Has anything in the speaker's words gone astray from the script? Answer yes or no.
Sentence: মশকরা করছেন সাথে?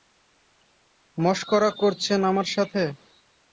yes